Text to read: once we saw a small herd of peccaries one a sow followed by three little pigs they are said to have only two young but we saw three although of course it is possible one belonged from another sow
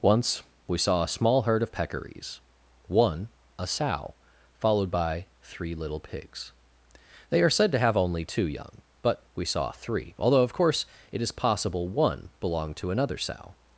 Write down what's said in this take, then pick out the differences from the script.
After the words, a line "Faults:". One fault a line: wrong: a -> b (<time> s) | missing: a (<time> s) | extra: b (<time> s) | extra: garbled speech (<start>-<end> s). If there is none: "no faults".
once we saw a small herd of peccaries one a sow followed by three little pigs they are said to have only two young but we saw three although of course it is possible one belonged to another sow
Faults:
wrong: from -> to (12.8 s)